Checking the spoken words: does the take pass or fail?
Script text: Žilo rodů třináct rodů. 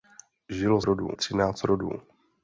pass